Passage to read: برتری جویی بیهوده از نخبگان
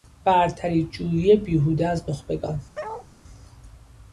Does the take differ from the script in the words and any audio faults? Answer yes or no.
yes